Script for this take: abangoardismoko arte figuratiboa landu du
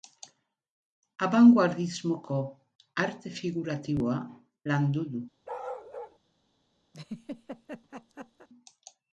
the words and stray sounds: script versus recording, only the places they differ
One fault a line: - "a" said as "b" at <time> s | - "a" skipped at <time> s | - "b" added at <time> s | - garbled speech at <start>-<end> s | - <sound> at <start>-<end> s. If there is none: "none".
- bark at 5.4-6.2 s
- laugh at 6.9-8.5 s